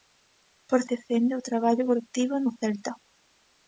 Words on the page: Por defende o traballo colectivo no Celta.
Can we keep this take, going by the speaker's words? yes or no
yes